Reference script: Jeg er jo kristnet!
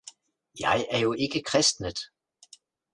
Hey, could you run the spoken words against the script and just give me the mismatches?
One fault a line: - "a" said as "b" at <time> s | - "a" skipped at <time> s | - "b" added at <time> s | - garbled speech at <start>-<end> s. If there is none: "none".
- "ikke" added at 1.1 s